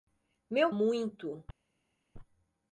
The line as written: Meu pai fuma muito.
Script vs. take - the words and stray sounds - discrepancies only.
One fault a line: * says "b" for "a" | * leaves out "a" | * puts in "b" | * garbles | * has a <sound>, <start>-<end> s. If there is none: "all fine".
* leaves out "pai fuma"